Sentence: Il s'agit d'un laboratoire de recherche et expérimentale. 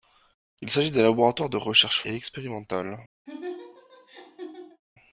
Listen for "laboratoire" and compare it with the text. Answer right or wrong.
right